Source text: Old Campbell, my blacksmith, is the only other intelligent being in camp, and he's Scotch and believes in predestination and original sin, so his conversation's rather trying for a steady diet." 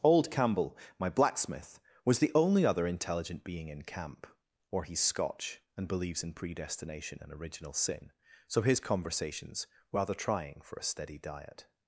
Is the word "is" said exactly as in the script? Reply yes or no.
no